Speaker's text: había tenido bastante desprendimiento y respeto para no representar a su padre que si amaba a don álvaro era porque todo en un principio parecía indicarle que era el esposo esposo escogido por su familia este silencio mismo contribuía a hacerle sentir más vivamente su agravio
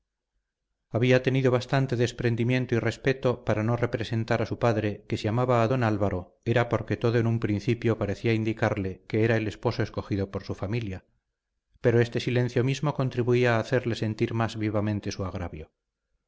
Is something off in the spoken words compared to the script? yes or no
yes